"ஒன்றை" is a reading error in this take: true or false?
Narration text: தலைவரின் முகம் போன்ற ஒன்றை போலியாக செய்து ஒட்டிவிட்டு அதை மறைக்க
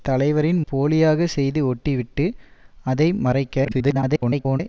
true